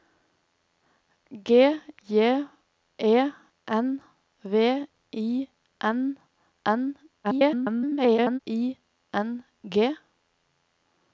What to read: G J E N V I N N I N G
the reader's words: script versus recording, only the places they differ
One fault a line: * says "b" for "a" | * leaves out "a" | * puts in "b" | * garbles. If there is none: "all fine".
* garbles